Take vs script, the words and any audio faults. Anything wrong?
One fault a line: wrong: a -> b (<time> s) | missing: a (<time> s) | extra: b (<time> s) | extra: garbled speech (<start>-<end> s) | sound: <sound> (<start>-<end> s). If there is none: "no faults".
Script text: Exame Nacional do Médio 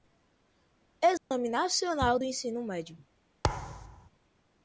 sound: dropout (1.2-1.3 s)
extra: Ensino (2.2 s)
sound: thud (3.4-4.1 s)